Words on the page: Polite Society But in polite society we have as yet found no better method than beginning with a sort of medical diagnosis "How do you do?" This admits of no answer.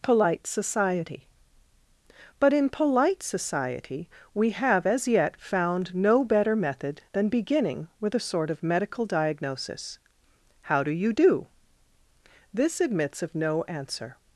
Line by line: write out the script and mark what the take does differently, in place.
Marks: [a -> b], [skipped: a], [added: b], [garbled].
Polite Society But in polite society we have as yet found no better method than beginning with a sort of medical diagnosis "How do you do?" This admits of no answer.